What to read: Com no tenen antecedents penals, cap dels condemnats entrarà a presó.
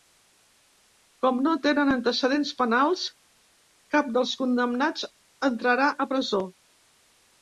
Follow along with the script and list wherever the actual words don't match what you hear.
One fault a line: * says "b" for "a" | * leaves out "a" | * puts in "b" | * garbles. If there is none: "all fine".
all fine